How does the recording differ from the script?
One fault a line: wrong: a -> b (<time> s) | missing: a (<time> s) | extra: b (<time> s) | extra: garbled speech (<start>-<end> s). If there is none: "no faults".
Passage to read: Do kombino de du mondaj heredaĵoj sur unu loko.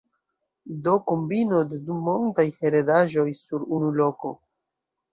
no faults